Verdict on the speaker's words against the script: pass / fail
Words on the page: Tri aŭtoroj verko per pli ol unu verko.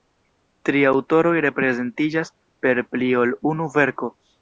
fail